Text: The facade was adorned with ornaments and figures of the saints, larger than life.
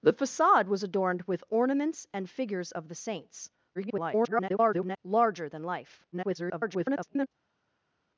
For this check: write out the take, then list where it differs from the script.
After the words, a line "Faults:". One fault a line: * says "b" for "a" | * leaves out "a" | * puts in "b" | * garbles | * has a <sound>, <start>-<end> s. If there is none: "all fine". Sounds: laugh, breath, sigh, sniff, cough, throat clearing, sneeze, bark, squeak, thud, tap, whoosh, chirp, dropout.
The facade was adorned with ornaments and figures of the saints, [garbled] larger than life. [garbled]
Faults:
* garbles
* garbles